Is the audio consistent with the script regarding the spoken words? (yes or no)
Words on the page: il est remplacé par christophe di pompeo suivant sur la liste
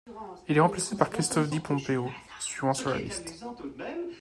yes